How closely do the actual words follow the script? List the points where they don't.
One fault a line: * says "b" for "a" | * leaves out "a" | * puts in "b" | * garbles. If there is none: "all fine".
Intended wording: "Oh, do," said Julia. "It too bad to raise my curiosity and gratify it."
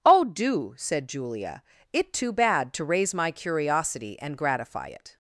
all fine